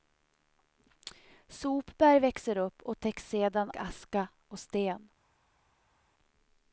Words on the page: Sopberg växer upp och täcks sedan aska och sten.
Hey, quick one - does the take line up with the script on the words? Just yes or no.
yes